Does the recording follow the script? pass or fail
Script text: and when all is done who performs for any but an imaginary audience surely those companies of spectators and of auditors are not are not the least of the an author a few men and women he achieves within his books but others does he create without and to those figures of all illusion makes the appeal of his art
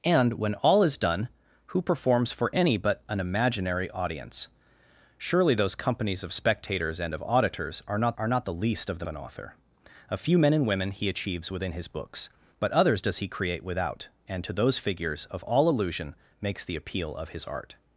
pass